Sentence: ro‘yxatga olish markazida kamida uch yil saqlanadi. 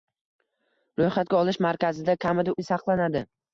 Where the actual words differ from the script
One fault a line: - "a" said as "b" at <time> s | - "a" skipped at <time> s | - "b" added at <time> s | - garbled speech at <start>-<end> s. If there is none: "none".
- "uch" skipped at 2.6 s